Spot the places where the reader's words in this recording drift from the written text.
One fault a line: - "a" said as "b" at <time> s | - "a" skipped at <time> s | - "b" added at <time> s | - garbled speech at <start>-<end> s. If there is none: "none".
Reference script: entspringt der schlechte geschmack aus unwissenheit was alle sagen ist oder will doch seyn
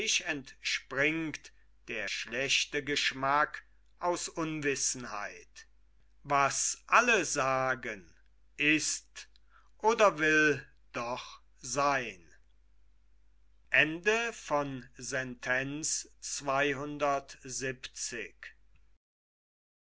none